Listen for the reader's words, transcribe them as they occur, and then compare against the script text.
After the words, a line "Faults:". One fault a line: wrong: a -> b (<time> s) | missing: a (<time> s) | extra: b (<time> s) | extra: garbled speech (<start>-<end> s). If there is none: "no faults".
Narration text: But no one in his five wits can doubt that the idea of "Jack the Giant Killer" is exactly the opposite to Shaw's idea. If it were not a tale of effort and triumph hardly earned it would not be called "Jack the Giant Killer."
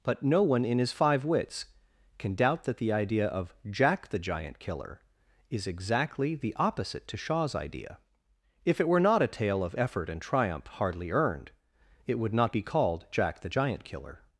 But no one in his five wits can doubt that the idea of "Jack the Giant Killer" is exactly the opposite to Shaw's idea. If it were not a tale of effort and triumph hardly earned it would not be called "Jack the Giant Killer."
Faults:
no faults